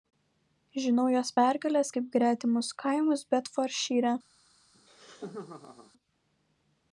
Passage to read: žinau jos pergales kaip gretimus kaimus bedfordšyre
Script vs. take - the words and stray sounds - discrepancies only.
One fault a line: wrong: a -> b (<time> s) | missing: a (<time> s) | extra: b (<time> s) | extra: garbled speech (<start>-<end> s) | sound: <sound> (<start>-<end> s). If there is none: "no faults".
sound: laugh (4.7-5.9 s)